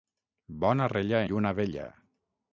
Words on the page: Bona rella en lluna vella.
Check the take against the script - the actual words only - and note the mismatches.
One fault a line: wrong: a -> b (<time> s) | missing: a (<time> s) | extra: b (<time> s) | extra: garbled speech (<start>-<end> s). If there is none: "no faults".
missing: en (1.2 s)